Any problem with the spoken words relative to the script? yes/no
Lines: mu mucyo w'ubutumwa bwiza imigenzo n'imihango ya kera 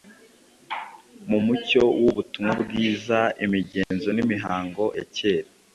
no